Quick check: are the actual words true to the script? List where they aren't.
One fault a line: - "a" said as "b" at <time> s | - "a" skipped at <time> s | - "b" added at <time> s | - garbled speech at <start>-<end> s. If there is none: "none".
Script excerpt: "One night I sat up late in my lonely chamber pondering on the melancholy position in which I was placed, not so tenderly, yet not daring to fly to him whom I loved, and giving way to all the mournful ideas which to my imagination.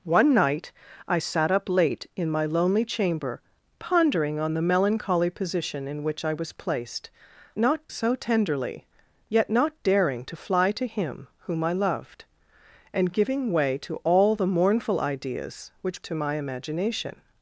none